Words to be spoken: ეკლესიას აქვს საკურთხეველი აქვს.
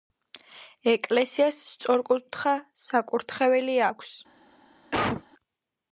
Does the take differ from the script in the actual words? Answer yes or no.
yes